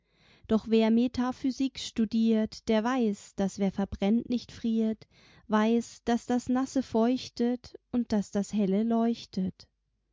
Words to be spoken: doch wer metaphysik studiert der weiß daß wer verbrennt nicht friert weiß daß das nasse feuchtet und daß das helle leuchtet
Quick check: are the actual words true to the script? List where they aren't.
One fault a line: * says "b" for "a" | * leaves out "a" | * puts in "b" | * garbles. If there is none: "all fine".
all fine